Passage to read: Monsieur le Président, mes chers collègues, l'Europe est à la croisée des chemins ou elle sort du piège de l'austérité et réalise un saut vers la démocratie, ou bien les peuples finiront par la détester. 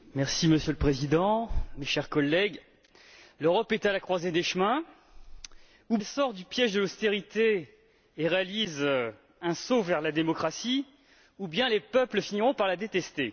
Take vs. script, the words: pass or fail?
pass